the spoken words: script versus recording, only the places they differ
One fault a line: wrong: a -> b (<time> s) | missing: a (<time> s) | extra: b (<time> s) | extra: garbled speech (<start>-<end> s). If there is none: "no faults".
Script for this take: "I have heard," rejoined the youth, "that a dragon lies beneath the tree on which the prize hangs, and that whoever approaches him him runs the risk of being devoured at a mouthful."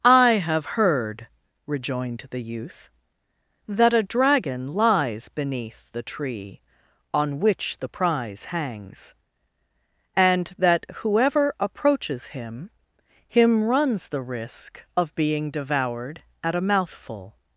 no faults